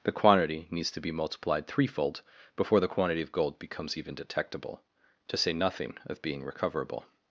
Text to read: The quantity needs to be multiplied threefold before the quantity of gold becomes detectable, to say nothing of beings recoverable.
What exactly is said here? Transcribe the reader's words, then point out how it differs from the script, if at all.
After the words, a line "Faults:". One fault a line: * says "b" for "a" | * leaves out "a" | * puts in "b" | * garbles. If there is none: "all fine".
The quantity needs to be multiplied threefold before the quantity of gold becomes even detectable, to say nothing of being recoverable.
Faults:
* puts in "even"
* says "being" for "beings"